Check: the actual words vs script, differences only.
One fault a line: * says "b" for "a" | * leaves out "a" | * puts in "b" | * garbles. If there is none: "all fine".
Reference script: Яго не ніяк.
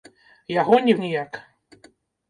all fine